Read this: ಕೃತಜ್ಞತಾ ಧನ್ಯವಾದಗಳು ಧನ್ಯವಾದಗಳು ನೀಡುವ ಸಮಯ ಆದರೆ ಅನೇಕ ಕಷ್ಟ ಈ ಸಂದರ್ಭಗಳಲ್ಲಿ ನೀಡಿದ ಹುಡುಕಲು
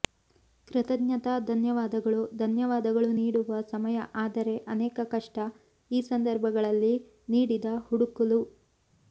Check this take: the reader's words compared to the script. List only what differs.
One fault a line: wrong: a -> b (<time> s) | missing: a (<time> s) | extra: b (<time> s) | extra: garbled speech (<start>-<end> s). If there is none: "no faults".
no faults